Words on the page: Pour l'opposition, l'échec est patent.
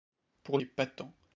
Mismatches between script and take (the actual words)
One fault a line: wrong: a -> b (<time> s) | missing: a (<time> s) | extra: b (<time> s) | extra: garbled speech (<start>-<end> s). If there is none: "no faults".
missing: l'opposition l'échec (0.6 s)